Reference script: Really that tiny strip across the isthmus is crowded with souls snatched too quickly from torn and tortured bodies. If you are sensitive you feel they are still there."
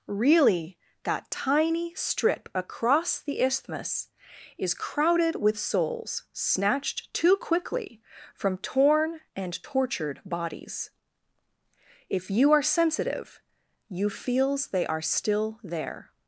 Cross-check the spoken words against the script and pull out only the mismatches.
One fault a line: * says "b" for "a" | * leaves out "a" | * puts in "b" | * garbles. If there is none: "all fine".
* says "feels" for "feel"